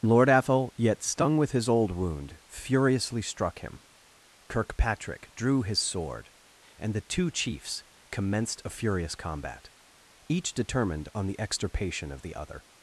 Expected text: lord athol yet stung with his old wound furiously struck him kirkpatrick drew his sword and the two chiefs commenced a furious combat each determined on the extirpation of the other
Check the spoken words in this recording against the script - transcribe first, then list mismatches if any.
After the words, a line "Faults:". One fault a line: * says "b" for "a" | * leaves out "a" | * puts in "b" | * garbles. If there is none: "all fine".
lord athol yet stung with his old wound furiously struck him kirkpatrick drew his sword and the two chiefs commenced a furious combat each determined on the extirpation of the other
Faults:
all fine